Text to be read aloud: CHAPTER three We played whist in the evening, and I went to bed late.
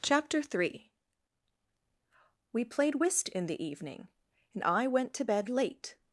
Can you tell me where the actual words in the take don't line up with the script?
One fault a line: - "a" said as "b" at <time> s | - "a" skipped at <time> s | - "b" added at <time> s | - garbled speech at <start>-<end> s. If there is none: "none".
none